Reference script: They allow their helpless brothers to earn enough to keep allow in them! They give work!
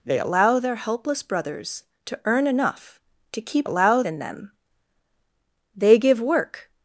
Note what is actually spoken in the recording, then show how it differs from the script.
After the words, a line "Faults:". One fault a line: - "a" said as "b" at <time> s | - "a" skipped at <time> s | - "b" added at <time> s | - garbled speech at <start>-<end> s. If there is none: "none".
They allow their helpless brothers to earn enough to keep allow in them! They give work!
Faults:
none